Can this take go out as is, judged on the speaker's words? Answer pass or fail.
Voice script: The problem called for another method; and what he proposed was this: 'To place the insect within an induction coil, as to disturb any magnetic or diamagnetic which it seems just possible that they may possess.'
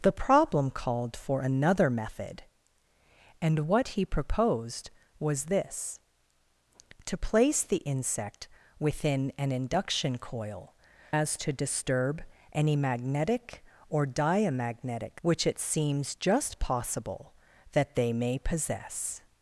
pass